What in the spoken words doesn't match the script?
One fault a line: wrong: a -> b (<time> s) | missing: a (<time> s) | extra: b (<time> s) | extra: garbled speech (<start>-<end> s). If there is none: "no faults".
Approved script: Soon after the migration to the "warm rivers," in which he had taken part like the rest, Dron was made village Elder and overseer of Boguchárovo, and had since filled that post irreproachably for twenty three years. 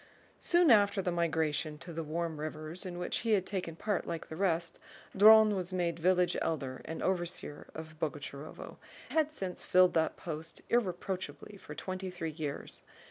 missing: and (8.8 s)